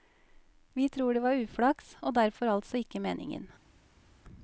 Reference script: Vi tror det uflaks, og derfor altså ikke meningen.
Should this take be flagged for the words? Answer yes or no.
yes